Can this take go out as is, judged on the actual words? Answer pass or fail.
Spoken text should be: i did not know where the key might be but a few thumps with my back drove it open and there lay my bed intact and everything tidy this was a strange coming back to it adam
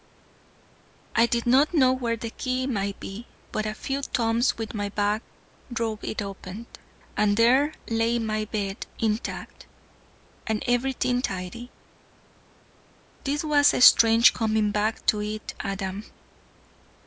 pass